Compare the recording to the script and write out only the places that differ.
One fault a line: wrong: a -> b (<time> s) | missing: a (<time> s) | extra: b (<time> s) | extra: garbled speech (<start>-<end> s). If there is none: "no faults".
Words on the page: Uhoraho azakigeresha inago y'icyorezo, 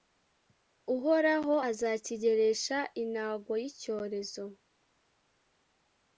no faults